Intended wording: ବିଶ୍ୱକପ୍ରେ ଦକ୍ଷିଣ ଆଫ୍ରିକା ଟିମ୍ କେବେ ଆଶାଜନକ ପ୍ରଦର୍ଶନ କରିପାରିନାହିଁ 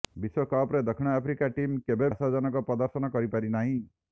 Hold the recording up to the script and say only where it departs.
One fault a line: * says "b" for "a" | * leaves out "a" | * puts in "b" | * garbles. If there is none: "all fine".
all fine